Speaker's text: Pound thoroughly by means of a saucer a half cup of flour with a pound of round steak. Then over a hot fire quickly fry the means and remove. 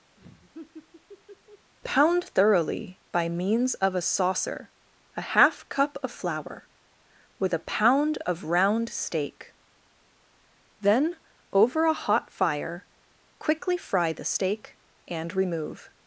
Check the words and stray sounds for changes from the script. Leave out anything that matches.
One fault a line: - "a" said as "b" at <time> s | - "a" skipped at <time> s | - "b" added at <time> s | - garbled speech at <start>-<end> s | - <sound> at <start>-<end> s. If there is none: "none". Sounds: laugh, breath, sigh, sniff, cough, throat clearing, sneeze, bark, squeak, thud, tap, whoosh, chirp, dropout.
- laugh at 0.2-1.7 s
- "means" said as "steak" at 14.2 s